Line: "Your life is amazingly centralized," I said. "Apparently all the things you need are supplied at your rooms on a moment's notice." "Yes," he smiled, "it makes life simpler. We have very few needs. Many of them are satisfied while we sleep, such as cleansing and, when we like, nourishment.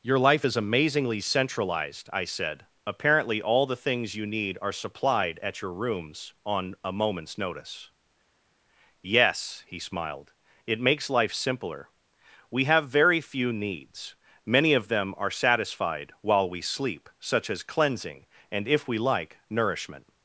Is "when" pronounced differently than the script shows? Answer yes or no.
yes